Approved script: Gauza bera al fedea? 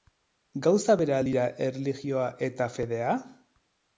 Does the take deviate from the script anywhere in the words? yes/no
yes